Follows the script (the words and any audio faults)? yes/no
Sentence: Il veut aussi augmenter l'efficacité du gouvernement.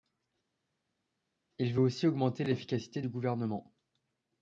yes